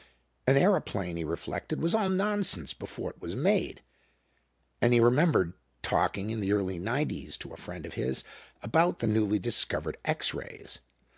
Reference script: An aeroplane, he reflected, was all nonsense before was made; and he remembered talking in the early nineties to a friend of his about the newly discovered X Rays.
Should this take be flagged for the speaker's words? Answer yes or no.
yes